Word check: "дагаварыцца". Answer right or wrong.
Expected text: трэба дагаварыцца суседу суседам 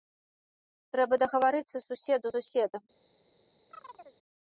right